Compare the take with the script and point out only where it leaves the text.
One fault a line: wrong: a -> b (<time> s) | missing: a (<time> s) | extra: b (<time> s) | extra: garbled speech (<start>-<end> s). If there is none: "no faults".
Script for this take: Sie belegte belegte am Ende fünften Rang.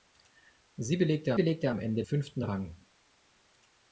no faults